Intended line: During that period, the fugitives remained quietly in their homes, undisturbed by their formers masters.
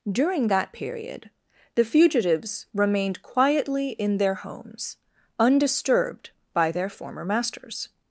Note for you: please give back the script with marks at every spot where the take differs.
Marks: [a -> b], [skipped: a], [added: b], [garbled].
During that period, the fugitives remained quietly in their homes, undisturbed by their [formers -> former] masters.